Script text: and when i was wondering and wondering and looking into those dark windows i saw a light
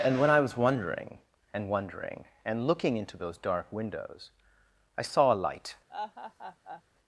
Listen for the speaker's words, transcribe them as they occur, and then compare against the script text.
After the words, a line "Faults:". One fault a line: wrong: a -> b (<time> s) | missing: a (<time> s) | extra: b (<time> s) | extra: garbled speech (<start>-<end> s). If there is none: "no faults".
and when i was wondering and wondering and looking into those dark windows i saw a light
Faults:
no faults